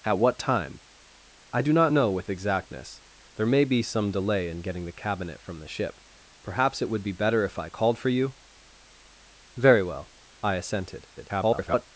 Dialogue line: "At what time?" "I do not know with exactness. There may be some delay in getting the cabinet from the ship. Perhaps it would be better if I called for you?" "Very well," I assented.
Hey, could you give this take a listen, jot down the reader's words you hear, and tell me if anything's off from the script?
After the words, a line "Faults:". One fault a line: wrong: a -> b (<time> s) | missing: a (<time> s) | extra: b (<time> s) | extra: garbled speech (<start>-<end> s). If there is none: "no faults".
"At what time?" "I do not know with exactness. There may be some delay in getting the cabinet from the ship. Perhaps it would be better if I called for you?" "Very well," I assented. [garbled]
Faults:
extra: garbled speech (11.2-11.9 s)